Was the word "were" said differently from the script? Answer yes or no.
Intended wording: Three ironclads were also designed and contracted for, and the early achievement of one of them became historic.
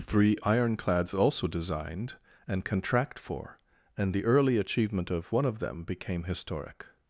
yes